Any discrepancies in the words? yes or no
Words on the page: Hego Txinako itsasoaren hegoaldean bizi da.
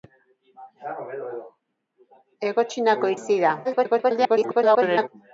yes